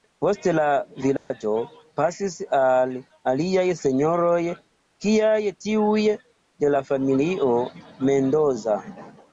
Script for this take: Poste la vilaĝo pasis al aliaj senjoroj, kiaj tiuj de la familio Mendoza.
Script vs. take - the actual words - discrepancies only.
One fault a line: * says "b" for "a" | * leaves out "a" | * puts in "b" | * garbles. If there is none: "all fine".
all fine